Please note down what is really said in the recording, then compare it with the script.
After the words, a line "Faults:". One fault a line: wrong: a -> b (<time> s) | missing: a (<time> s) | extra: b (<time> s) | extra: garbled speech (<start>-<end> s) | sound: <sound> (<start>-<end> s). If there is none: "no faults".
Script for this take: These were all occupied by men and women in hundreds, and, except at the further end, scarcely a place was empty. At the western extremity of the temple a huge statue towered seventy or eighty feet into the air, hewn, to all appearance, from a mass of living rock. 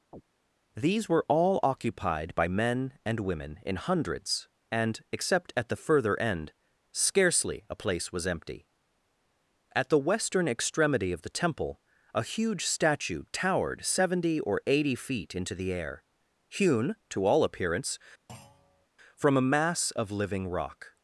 These were all occupied by men and women in hundreds, and, except at the further end, scarcely a place was empty. At the western extremity of the temple a huge statue towered seventy or eighty feet into the air, hewn, to all appearance, from a mass of living rock.
Faults:
sound: chirp (0.1-0.2 s)
sound: thud (18.3-18.9 s)